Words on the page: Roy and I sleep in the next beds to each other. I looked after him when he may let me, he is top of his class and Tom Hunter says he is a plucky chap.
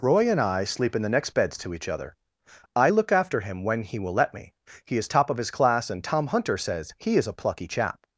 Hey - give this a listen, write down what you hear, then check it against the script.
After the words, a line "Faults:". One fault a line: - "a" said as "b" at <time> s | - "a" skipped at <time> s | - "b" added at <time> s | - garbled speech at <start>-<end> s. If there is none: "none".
Roy and I sleep in the next beds to each other. I look after him when he will let me, he is top of his class and Tom Hunter says he is a plucky chap.
Faults:
- "looked" said as "look" at 2.9 s
- "may" said as "will" at 4.0 s